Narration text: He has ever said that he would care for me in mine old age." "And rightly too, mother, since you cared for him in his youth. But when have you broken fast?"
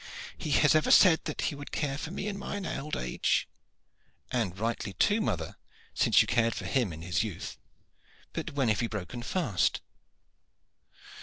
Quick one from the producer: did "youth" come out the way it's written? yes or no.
yes